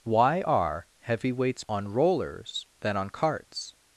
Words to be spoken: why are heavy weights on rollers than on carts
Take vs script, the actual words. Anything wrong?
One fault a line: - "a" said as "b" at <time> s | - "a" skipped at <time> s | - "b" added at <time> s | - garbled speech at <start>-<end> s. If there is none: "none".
none